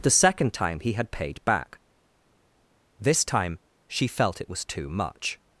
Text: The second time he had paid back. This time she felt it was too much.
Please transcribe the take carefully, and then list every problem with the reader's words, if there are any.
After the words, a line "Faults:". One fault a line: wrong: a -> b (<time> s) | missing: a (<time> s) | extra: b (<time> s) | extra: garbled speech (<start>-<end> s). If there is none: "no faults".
The second time he had paid back. This time she felt it was too much.
Faults:
no faults